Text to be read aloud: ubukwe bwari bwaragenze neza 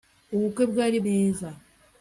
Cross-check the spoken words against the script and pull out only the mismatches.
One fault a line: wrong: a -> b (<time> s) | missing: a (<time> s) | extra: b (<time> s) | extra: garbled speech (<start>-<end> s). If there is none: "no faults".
missing: bwaragenze (1.0 s)